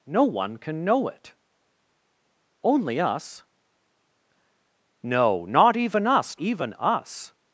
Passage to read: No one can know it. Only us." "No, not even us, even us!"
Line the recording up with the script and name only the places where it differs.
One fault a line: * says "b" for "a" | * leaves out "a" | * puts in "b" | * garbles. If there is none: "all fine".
all fine